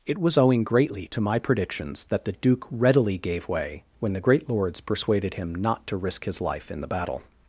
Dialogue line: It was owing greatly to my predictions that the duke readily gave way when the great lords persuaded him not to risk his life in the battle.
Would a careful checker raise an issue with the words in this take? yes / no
no